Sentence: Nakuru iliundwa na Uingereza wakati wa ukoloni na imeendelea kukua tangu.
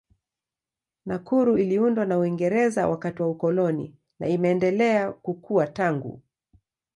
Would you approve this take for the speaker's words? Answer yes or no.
yes